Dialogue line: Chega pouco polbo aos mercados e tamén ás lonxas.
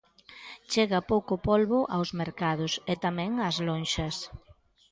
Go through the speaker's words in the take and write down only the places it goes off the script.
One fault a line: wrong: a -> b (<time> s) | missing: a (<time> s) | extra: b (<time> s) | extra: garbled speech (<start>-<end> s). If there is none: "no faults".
no faults